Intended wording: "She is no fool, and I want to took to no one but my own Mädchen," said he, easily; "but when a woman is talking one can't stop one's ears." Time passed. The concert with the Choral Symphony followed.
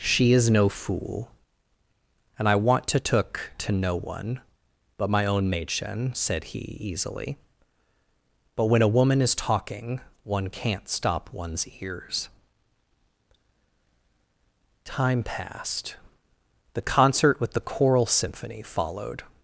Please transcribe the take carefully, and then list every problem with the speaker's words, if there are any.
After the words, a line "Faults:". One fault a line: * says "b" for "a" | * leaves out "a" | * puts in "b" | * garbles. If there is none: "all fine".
"She is no fool, and I want to took to no one but my own Mädchen," said he, easily; "but when a woman is talking one can't stop one's ears." Time passed. The concert with the Choral Symphony followed.
Faults:
all fine